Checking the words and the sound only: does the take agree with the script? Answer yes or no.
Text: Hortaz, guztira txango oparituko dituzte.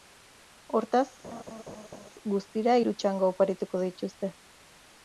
no